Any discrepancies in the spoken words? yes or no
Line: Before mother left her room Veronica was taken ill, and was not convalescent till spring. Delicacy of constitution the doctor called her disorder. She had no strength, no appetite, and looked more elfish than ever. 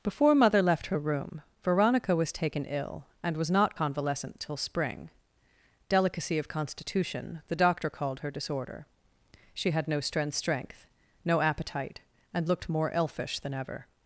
yes